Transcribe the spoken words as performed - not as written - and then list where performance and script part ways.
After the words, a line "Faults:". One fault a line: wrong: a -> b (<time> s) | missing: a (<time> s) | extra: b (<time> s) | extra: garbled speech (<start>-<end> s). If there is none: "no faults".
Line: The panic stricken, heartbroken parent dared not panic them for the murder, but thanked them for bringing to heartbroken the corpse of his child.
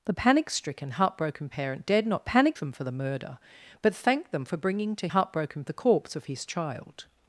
The panic stricken, heartbroken parent dared not panic them for the murder, but thanked them for bringing to heartbroken the corpse of his child.
Faults:
no faults